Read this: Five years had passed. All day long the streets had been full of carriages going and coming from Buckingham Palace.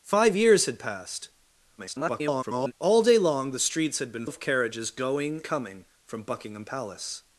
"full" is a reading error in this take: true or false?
true